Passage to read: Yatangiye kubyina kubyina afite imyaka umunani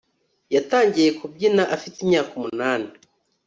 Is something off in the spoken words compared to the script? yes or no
yes